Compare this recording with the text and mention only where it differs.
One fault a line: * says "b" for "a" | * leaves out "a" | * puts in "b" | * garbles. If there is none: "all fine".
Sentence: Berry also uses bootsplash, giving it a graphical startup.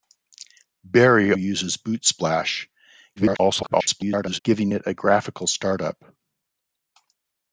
* leaves out "also"
* garbles